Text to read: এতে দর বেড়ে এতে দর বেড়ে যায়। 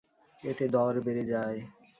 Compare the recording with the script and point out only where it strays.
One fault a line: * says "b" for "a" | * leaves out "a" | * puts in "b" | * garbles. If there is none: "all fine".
* leaves out "এতে দর বেড়ে"